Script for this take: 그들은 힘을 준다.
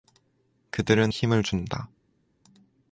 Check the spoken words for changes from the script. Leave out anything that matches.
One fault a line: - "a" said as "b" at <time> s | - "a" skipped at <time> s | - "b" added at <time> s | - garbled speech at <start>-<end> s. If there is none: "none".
none